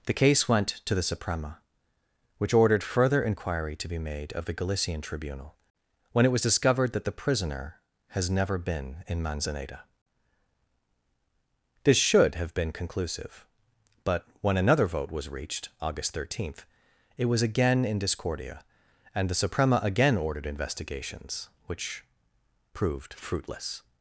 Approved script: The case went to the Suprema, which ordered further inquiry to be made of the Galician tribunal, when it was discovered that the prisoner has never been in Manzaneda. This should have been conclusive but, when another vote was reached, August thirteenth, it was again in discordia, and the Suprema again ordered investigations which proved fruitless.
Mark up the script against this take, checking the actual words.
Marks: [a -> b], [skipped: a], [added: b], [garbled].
The case went to the Suprema, which ordered further inquiry to be made of the Galician tribunal, when it was discovered that the prisoner has never been in Manzaneda. This should have been conclusive but, when another vote was reached, August thirteenth, it was again in discordia, and the Suprema again ordered investigations which proved fruitless.